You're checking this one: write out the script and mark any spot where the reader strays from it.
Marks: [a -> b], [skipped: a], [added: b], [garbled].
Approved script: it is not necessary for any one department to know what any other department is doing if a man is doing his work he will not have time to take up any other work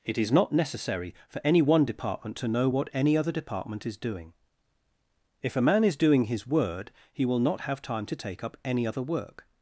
it is not necessary for any one department to know what any other department is doing if a man is doing his [work -> word] he will not have time to take up any other work